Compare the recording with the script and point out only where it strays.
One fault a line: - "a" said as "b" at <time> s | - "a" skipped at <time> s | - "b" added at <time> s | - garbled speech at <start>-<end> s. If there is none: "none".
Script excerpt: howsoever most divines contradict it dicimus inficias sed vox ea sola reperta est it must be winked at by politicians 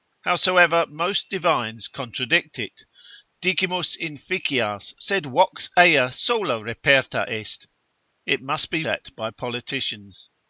- "winked" skipped at 8.8 s